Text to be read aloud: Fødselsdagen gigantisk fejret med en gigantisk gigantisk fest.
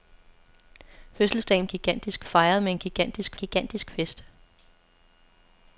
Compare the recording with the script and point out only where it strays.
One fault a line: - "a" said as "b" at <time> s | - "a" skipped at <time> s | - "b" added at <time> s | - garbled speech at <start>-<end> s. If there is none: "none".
none